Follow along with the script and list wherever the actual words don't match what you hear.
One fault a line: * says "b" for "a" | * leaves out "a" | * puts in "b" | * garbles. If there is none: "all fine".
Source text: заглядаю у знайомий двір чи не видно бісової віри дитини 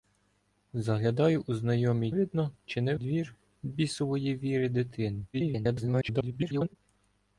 * says "видно" for "двір"
* says "двір" for "видно"
* garbles